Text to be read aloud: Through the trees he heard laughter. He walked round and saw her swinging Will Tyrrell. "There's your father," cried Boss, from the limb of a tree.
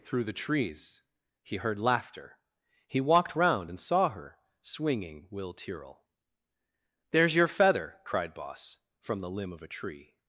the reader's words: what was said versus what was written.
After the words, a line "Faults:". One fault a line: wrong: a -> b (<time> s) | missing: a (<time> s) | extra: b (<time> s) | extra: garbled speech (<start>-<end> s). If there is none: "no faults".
Through the trees he heard laughter. He walked round and saw her swinging Will Tyrrell. "There's your feather," cried Boss, from the limb of a tree.
Faults:
wrong: father -> feather (7.5 s)